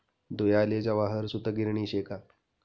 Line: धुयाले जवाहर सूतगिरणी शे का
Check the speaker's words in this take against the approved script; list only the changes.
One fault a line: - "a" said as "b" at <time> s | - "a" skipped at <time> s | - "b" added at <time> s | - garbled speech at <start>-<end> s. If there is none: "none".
none